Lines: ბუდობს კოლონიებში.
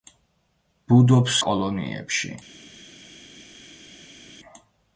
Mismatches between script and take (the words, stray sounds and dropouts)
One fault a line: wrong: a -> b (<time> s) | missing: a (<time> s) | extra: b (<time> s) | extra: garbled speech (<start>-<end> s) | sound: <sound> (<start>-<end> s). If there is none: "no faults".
no faults